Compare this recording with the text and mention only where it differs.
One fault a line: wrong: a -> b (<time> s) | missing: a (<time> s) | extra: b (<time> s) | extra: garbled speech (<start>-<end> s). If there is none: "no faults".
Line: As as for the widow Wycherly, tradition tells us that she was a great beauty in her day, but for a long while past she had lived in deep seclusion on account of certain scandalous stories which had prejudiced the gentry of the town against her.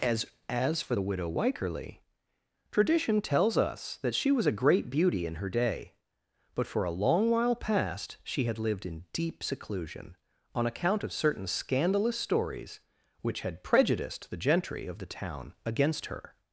no faults